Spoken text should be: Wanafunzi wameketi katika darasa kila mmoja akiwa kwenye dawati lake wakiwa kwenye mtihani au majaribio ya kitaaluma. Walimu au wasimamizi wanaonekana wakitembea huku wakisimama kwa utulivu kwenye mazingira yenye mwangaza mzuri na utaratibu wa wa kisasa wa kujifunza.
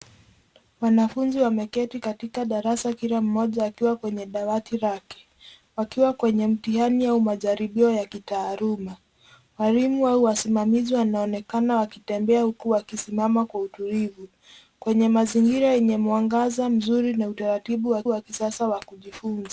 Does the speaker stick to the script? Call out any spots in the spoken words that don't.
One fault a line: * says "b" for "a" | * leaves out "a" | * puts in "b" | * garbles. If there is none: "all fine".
all fine